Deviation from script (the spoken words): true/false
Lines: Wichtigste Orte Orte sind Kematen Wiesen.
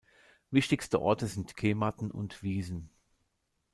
true